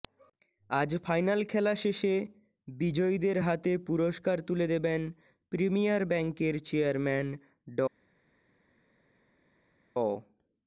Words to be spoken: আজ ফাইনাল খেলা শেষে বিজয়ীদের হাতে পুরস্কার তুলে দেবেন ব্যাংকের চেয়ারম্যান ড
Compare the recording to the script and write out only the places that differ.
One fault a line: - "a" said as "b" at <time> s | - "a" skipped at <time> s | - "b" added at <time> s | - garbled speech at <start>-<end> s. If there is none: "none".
- "প্রিমিয়ার" added at 5.5 s